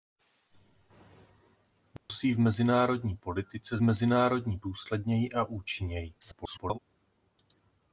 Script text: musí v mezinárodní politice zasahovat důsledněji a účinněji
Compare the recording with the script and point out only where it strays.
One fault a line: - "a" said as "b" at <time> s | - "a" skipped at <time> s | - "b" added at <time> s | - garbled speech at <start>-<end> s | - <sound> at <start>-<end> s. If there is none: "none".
- dropout at 2.0-2.1 s
- "zasahovat" said as "mezinárodní" at 3.8 s
- garbled speech at 6.2-6.8 s